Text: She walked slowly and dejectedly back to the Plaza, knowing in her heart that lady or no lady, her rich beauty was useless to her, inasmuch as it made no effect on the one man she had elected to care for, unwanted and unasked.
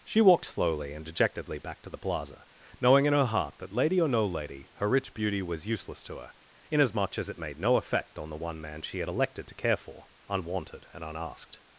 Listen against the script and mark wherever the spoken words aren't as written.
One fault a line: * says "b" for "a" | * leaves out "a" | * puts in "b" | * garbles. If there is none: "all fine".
all fine